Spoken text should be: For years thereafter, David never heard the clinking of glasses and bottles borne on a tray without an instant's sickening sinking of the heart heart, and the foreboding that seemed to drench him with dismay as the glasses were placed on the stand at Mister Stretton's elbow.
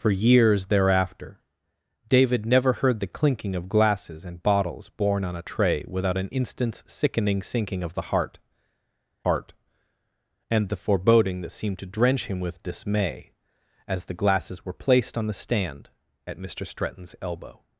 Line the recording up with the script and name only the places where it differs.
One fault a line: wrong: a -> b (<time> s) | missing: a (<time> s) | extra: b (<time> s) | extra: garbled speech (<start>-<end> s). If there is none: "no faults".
no faults